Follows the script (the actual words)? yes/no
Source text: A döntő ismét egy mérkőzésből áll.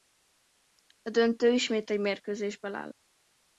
yes